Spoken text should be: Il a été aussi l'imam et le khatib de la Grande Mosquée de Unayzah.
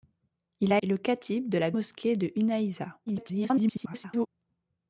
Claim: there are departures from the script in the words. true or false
true